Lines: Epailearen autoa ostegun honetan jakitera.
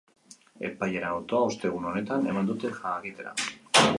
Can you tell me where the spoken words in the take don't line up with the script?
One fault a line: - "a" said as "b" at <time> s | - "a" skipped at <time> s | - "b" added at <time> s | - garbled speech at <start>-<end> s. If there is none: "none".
- "eman dute" added at 2.3 s